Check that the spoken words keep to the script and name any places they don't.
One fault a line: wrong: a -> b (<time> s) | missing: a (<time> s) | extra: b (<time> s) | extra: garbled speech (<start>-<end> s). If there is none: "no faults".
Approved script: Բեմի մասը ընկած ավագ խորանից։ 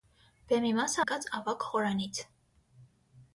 no faults